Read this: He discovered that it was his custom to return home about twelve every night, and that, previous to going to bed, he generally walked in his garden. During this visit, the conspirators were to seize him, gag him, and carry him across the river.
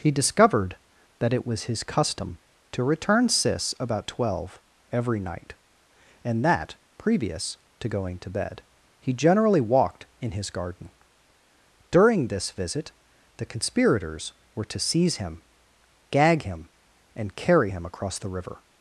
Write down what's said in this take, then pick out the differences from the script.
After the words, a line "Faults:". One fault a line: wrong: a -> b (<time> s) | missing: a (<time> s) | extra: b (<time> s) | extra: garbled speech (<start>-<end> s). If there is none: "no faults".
He discovered that it was his custom to return sis about twelve every night, and that, previous to going to bed, he generally walked in his garden. During this visit, the conspirators were to seize him, gag him, and carry him across the river.
Faults:
wrong: home -> sis (3.3 s)